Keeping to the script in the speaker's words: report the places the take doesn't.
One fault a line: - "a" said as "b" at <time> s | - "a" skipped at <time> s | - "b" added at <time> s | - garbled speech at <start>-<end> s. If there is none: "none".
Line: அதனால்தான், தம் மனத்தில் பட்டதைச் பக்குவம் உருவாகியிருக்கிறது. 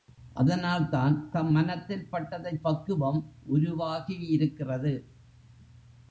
none